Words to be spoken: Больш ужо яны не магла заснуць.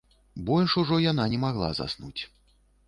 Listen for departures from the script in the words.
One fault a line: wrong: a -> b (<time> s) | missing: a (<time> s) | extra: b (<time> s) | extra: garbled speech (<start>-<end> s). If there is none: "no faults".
wrong: яны -> яна (1.1 s)